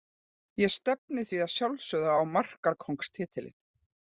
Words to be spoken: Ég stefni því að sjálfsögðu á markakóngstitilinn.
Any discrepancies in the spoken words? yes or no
no